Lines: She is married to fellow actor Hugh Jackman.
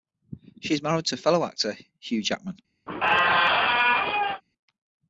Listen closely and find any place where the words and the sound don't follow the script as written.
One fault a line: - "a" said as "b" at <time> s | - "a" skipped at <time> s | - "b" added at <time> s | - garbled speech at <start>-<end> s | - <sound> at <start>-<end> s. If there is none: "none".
- squeak at 2.9-4.4 s